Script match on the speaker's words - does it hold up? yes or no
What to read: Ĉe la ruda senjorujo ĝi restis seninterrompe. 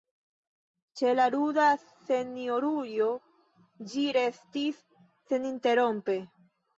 yes